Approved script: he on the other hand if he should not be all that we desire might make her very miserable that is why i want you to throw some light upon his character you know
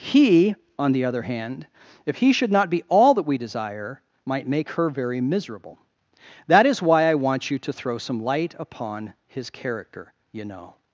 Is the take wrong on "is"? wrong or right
right